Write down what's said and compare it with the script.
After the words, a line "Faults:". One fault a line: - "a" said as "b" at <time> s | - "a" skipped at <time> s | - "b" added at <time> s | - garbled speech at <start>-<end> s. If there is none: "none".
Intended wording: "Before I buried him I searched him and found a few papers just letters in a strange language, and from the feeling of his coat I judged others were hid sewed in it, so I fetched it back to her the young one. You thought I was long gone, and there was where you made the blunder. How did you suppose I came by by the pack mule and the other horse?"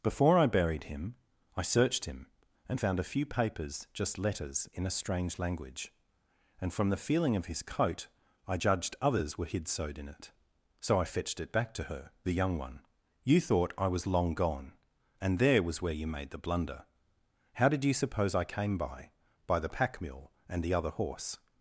"Before I buried him I searched him and found a few papers just letters in a strange language, and from the feeling of his coat I judged others were hid sewed in it, so I fetched it back to her the young one. You thought I was long gone, and there was where you made the blunder. How did you suppose I came by by the pack mule and the other horse?"
Faults:
none